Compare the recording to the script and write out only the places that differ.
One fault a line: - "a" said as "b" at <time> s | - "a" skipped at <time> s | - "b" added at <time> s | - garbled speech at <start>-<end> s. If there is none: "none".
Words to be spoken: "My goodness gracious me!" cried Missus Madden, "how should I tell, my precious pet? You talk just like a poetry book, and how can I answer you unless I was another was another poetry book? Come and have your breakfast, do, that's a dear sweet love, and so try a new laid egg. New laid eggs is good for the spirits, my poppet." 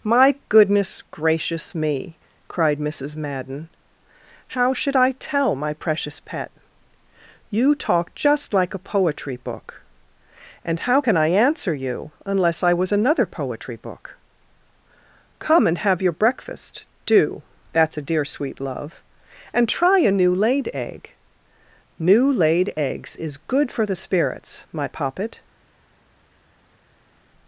- "was another" skipped at 13.3 s
- "so" skipped at 19.7 s